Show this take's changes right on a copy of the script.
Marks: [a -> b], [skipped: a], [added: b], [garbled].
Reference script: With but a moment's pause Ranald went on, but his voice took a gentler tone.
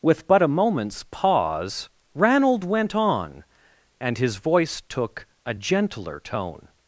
With but a moment's pause Ranald went on, [but -> and] his voice took a gentler tone.